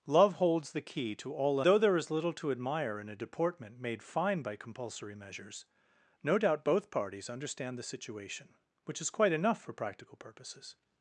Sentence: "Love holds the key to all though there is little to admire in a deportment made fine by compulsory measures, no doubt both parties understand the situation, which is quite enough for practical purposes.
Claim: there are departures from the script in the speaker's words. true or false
false